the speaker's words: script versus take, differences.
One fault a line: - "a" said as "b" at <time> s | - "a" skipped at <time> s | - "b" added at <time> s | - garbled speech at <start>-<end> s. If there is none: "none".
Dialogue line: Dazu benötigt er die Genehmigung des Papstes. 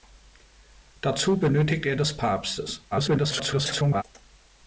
- "die Genehmigung" skipped at 1.9 s
- garbled speech at 2.9-4.0 s